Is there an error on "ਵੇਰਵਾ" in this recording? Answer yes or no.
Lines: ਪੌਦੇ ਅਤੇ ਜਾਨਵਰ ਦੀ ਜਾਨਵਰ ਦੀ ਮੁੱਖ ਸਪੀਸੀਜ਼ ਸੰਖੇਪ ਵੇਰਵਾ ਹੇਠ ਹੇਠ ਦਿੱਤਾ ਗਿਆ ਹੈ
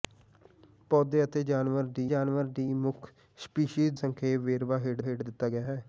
no